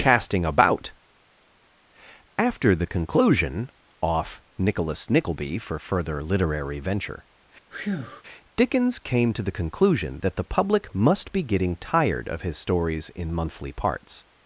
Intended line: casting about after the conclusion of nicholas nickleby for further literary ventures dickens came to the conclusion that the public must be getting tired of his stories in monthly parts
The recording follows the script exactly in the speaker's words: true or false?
false